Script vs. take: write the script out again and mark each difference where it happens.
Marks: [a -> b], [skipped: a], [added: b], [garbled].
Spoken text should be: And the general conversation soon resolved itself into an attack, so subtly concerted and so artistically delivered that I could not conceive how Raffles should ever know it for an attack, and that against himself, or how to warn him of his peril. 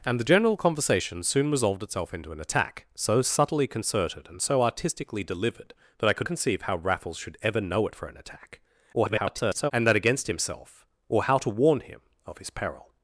And the general conversation soon resolved itself into an attack, so subtly concerted and so artistically delivered that I could [skipped: not] conceive how Raffles should ever know it for an attack, [garbled] and that against himself, or how to warn him of his peril.